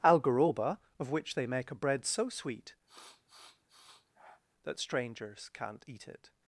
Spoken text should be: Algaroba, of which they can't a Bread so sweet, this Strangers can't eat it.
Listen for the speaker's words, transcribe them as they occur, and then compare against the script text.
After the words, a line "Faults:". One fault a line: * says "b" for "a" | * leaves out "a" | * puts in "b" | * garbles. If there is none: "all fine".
Algaroba, of which they make a Bread so sweet, that Strangers can't eat it.
Faults:
* says "make" for "can't"
* says "that" for "this"